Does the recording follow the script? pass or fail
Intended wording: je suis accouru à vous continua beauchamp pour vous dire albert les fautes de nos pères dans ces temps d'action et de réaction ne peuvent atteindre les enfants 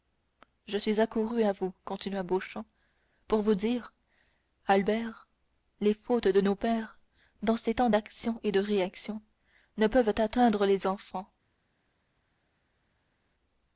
pass